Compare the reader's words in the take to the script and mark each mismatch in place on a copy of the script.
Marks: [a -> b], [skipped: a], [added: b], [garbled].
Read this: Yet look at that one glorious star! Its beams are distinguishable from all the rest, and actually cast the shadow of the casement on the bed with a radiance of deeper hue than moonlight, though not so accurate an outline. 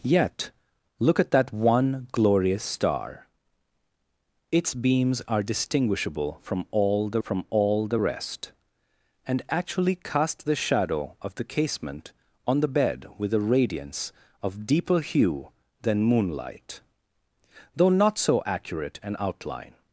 Yet look at that one glorious star! Its beams are distinguishable from all the [added: from all the] rest, and actually cast the shadow of the casement on the bed with a radiance of deeper hue than moonlight, though not so accurate an outline.